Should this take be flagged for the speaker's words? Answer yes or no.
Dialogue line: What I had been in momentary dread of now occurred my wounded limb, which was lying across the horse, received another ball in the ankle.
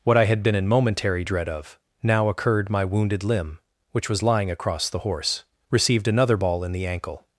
no